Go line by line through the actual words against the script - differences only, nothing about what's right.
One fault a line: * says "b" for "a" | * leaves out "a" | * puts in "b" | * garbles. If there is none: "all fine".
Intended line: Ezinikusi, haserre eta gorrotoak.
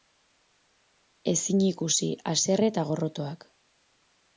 all fine